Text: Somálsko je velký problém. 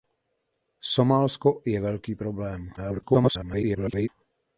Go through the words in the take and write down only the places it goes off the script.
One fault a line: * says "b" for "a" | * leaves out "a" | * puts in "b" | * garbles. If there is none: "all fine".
* garbles